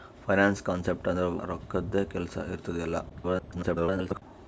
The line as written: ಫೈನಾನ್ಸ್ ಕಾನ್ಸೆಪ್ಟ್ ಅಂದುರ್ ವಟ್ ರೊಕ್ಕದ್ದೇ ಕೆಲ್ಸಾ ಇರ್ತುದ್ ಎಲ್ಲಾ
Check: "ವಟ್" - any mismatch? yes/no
yes